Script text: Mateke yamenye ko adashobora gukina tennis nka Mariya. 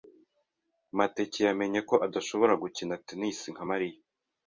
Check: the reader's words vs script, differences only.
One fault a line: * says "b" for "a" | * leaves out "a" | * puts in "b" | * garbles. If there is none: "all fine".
all fine